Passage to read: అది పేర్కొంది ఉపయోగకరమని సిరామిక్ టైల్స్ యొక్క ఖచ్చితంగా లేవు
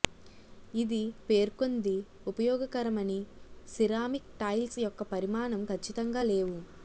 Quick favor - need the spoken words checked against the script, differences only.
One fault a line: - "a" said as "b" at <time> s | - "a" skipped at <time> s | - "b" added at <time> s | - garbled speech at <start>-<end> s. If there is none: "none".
- "అది" said as "ఇది" at 0.7 s
- "పరిమాణం" added at 5.1 s